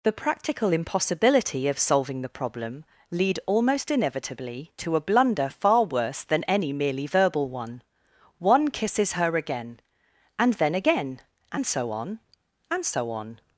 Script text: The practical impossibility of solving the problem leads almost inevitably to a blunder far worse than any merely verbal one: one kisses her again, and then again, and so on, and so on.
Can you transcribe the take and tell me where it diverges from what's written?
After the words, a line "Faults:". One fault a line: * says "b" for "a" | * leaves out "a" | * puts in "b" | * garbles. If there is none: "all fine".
The practical impossibility of solving the problem lead almost inevitably to a blunder far worse than any merely verbal one: one kisses her again, and then again, and so on, and so on.
Faults:
* says "lead" for "leads"